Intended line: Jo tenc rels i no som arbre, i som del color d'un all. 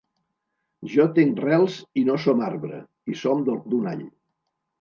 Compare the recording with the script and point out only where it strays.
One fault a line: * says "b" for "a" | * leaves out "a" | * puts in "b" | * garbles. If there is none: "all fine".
* leaves out "color"